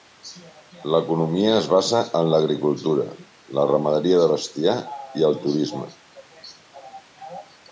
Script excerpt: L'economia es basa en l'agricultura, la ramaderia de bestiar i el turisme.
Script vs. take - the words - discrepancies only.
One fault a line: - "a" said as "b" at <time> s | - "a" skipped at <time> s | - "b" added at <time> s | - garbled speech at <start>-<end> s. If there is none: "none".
none